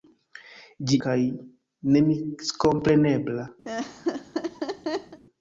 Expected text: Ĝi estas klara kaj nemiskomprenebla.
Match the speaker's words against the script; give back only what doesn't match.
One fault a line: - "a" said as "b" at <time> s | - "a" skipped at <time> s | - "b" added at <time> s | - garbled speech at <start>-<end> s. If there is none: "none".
- "estas klara" skipped at 1.0 s